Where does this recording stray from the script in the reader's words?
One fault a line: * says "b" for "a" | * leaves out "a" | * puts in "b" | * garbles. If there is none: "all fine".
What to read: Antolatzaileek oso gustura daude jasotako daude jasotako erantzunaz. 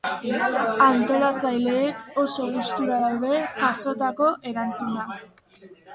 * leaves out "daude jasotako"